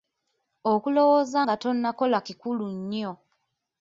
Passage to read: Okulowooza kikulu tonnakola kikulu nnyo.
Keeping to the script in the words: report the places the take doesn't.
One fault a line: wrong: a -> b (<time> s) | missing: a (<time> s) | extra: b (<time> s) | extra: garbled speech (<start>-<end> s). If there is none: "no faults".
wrong: kikulu -> nga (1.4 s)